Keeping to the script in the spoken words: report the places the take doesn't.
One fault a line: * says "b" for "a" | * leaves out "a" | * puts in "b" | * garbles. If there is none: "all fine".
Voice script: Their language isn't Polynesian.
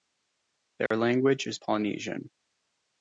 * says "is" for "isn't"